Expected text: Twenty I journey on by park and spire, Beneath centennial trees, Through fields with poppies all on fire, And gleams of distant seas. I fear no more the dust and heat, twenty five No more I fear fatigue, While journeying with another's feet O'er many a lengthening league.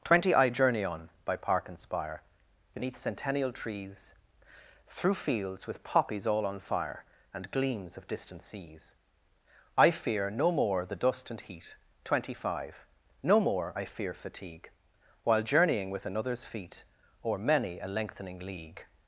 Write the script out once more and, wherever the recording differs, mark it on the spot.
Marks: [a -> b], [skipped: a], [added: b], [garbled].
Twenty I journey on by park and spire, Beneath centennial trees, Through fields with poppies all on fire, And gleams of distant seas. I fear no more the dust and heat, twenty five No more I fear fatigue, While journeying with another's feet O'er many a lengthening league.